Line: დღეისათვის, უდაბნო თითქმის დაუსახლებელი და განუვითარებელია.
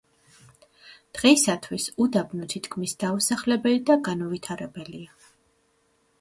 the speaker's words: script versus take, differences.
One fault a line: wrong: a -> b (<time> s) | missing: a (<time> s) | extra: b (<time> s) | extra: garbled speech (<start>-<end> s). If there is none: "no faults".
no faults